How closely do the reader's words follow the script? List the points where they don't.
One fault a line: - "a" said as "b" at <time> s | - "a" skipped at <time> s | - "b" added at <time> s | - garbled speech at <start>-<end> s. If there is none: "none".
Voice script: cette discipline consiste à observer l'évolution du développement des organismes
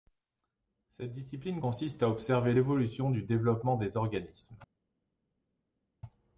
none